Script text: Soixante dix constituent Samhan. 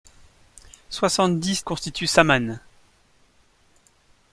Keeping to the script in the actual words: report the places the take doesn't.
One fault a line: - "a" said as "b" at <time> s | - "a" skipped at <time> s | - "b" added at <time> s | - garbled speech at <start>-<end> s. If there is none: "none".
none